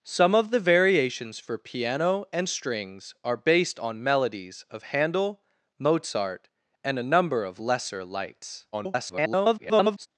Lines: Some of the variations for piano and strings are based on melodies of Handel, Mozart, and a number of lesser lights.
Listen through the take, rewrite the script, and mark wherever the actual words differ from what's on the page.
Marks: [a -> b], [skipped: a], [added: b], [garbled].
Some of the variations for piano and strings are based on melodies of Handel, Mozart, and a number of lesser lights. [garbled]